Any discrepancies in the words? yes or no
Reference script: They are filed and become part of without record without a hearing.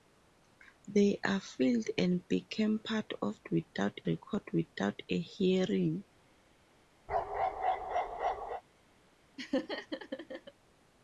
no